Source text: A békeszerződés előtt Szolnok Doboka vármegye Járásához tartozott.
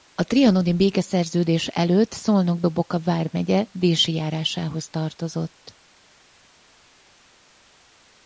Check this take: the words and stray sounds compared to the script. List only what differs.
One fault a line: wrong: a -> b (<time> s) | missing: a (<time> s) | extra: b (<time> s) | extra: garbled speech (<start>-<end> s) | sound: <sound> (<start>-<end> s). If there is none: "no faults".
extra: trianoni (0.2 s)
extra: Dési (3.7 s)